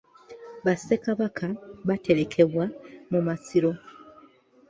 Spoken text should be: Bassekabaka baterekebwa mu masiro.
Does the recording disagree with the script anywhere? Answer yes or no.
no